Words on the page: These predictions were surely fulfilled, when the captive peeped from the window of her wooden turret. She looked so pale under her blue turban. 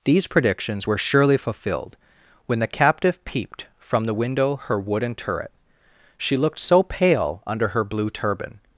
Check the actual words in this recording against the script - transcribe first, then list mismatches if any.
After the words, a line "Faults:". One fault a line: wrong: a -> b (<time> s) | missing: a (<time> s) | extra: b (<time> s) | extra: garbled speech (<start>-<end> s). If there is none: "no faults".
These predictions were surely fulfilled, when the captive peeped from the window her wooden turret. She looked so pale under her blue turban.
Faults:
missing: of (4.5 s)